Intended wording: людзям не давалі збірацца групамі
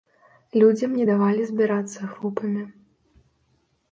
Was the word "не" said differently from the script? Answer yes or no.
no